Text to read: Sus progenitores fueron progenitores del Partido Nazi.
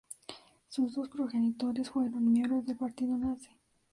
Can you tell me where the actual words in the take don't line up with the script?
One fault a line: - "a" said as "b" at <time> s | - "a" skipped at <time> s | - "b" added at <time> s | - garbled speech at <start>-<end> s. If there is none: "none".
- "dos" added at 0.9 s
- "progenitores" said as "miembros" at 2.3 s